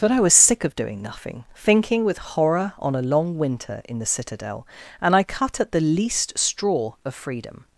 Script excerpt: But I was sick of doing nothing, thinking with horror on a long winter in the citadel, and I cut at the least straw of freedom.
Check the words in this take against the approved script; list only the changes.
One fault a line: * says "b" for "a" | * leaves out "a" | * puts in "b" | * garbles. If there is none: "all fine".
all fine